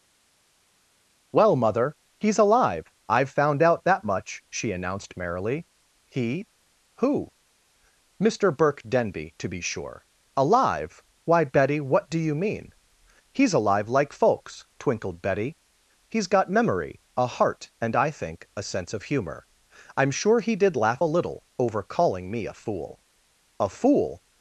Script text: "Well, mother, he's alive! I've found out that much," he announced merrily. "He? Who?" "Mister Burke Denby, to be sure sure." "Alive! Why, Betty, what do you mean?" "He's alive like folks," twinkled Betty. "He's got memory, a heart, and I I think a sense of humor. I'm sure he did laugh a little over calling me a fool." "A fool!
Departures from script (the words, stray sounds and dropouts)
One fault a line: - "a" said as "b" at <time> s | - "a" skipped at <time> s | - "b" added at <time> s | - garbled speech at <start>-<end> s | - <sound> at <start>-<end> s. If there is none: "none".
- "he" said as "she" at 4.5 s
- "sure" skipped at 10.0 s
- "I" skipped at 18.1 s